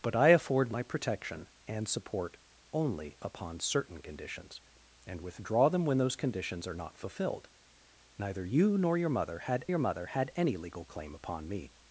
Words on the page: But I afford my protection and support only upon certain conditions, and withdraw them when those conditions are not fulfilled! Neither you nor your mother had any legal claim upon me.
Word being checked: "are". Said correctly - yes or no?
yes